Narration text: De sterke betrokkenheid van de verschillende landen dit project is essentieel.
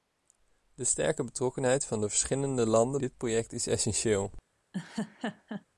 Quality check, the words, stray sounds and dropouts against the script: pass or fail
fail